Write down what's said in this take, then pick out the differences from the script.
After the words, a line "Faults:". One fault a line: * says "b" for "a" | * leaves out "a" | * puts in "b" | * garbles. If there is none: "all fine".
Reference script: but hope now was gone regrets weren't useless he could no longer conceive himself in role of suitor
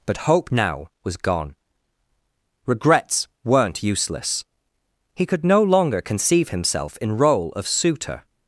but hope now was gone regrets weren't useless he could no longer conceive himself in role of suitor
Faults:
all fine